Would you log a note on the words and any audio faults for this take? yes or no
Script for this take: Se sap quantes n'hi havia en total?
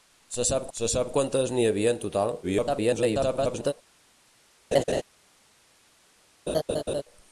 yes